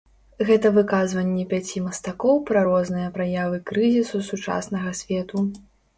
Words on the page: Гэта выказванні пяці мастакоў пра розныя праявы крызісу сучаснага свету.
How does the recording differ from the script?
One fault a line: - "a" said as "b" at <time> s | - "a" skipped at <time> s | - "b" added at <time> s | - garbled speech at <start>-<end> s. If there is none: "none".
none